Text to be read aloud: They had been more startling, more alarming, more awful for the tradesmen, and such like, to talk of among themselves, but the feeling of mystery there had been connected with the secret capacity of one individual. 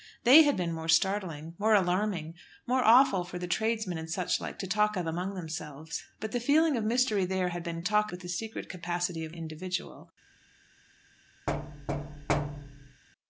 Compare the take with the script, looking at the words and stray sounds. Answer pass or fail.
fail